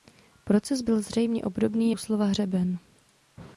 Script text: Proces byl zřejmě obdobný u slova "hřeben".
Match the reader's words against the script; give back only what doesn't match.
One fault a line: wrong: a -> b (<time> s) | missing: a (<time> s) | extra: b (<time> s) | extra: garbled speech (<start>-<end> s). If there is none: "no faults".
no faults